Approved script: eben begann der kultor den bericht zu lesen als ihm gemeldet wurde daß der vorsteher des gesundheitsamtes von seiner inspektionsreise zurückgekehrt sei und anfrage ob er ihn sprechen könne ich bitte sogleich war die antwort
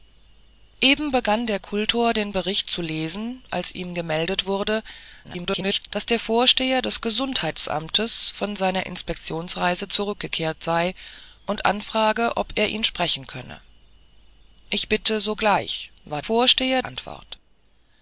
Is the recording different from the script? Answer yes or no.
yes